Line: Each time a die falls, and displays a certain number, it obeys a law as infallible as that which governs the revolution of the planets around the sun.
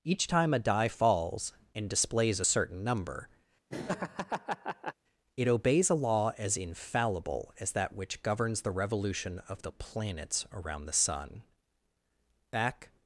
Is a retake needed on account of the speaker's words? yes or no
yes